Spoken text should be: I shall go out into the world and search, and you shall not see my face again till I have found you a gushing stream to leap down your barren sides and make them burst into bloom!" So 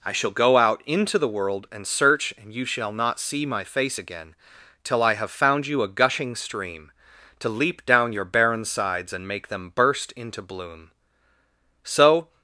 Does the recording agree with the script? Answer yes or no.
yes